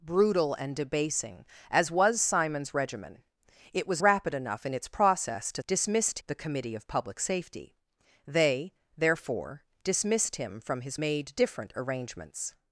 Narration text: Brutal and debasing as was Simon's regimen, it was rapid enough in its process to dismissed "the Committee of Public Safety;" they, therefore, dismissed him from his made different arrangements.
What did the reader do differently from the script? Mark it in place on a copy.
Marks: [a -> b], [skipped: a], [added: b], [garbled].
Brutal and debasing as was Simon's regimen, it was rapid enough in its process to dismissed "the Committee of Public Safety;" they, therefore, dismissed him from his made different arrangements.